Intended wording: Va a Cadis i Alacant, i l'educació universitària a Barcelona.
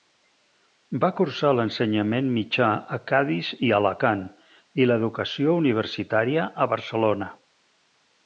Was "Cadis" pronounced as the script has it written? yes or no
yes